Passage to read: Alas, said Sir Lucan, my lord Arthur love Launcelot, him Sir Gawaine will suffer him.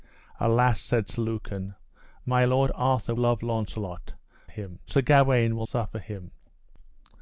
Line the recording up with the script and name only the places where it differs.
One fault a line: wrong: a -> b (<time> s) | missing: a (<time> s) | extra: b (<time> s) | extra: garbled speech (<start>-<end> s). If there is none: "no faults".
no faults